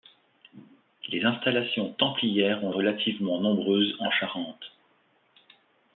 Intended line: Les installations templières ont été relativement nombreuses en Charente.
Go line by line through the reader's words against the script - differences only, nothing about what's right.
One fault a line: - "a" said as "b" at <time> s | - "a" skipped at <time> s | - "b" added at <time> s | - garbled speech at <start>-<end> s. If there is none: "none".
- "été" skipped at 2.7 s